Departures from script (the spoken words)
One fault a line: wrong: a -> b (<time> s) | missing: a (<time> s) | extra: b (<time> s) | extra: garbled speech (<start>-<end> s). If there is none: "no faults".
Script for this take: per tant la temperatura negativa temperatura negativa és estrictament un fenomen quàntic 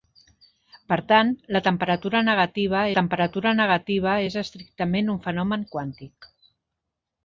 no faults